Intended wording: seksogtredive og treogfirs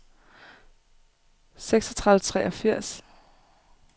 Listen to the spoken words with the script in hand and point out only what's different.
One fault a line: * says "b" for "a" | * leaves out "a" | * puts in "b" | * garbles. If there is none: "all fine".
all fine